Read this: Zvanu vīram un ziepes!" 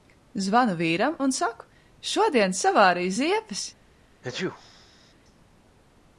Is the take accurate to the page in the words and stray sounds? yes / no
no